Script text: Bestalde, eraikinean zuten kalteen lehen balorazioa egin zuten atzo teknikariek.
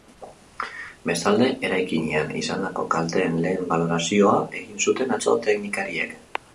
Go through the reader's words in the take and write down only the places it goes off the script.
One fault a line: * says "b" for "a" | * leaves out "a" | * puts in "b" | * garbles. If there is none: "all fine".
* says "izandako" for "zuten"